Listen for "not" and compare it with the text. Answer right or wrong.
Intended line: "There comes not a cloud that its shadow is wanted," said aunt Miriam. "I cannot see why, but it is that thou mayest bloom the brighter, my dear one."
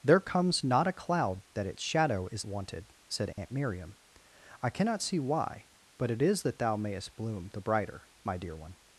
right